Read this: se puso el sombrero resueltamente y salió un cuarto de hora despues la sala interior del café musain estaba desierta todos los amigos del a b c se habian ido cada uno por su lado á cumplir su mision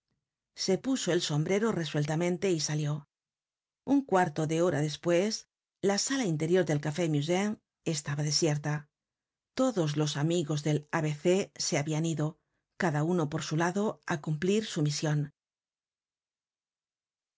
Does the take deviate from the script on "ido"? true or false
false